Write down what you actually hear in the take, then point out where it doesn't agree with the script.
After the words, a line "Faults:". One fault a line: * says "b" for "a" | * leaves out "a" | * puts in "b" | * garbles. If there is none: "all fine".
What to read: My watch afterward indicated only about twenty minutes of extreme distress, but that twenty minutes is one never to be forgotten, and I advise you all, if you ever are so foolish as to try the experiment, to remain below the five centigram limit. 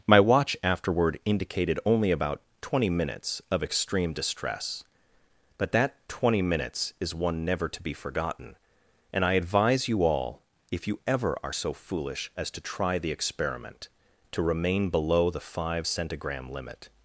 My watch afterward indicated only about twenty minutes of extreme distress, but that twenty minutes is one never to be forgotten, and I advise you all, if you ever are so foolish as to try the experiment, to remain below the five centigram limit.
Faults:
all fine